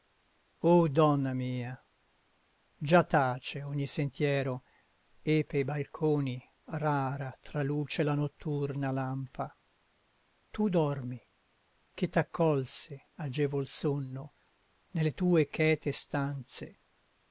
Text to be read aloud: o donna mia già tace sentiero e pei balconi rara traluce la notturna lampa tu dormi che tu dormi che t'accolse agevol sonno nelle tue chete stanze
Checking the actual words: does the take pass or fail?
fail